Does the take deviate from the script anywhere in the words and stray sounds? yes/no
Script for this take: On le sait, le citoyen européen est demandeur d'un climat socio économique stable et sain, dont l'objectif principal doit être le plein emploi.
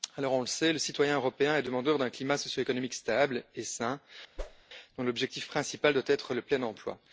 yes